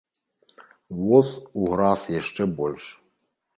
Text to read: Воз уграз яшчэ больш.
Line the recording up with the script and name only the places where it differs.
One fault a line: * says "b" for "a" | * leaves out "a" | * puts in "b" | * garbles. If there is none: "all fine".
all fine